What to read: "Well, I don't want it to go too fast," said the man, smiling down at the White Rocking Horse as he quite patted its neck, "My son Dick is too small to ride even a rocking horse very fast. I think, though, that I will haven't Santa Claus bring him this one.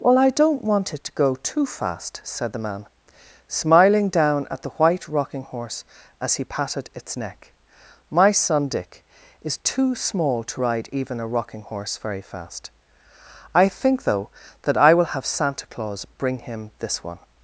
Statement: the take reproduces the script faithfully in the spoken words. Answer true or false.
false